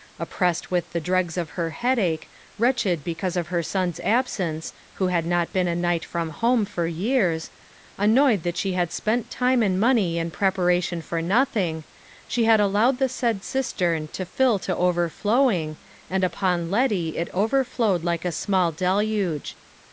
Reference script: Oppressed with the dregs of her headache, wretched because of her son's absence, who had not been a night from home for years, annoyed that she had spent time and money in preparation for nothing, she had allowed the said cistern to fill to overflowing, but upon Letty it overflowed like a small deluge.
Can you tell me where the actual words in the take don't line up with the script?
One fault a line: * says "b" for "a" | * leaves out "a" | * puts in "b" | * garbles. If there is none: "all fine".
* says "and" for "but"